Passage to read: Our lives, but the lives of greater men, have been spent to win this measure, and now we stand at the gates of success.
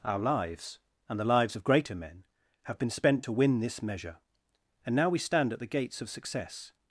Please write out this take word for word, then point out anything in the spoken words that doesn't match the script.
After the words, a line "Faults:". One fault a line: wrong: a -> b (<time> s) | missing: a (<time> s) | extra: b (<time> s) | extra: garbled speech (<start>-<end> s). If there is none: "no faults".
Our lives, and the lives of greater men, have been spent to win this measure, and now we stand at the gates of success.
Faults:
wrong: but -> and (1.1 s)